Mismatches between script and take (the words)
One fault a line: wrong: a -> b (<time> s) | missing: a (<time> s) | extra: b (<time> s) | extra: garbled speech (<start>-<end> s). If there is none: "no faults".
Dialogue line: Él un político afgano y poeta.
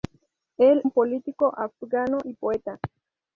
no faults